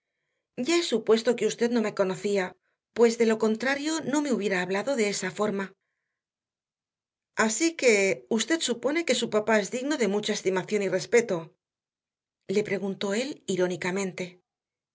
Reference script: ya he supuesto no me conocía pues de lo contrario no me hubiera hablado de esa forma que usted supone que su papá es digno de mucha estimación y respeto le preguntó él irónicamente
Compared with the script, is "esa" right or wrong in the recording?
right